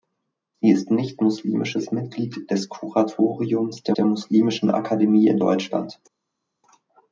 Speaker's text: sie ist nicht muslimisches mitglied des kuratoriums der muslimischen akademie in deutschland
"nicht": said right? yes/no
yes